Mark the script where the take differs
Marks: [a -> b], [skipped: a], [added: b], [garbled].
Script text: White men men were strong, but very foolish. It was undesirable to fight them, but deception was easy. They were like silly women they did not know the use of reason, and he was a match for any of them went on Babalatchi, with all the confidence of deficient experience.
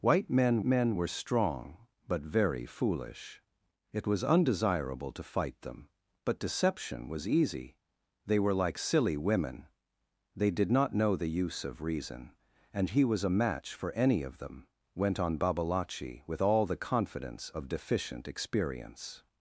White men men were strong, but very foolish. It was undesirable to fight them, but deception was easy. They were like silly women they did not know the use of reason, and he was a match for any of them went on Babalatchi, with all the confidence of deficient experience.